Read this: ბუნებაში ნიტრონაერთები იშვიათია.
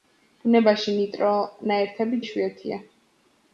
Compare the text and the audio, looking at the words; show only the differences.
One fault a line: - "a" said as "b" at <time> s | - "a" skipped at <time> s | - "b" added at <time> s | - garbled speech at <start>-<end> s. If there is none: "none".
none